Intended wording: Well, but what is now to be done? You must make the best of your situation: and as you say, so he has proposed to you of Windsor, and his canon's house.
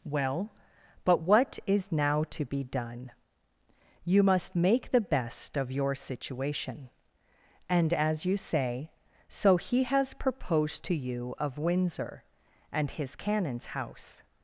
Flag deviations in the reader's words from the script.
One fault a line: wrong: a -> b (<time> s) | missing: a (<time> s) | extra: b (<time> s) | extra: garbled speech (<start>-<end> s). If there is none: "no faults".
no faults